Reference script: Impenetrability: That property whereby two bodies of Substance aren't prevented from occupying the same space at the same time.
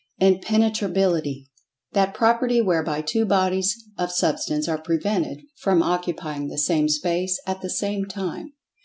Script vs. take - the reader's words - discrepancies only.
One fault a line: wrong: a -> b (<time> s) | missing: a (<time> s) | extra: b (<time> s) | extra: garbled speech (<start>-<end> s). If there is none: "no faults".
wrong: aren't -> are (4.7 s)